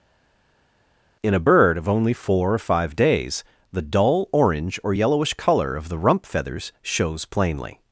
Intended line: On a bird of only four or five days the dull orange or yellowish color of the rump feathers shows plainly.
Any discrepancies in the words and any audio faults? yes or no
yes